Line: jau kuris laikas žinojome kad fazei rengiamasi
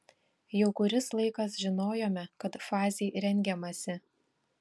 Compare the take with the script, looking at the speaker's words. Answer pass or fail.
pass